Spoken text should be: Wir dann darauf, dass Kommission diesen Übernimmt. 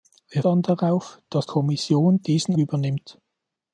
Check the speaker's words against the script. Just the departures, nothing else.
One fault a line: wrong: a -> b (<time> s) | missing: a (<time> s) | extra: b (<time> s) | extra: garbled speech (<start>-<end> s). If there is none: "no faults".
no faults